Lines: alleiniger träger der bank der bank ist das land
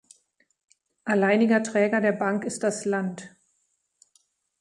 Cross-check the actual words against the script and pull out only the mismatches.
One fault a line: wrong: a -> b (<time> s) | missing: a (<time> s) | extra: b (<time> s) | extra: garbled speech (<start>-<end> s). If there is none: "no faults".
missing: der bank (2.5 s)